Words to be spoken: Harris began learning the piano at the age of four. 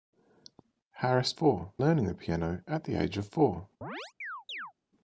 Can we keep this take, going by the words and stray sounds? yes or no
no